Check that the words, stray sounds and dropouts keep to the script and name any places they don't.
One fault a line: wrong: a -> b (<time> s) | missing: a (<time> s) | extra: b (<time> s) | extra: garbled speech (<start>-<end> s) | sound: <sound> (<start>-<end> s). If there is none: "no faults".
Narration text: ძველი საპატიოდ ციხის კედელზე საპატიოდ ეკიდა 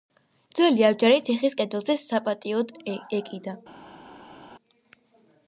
wrong: საპატიოდ -> აბჯარი (0.9 s)